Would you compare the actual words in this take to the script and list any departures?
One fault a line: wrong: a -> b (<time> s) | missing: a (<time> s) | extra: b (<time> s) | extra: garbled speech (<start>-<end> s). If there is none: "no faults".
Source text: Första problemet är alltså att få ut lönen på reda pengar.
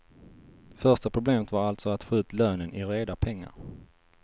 wrong: är -> var (1.5 s)
wrong: på -> i (2.7 s)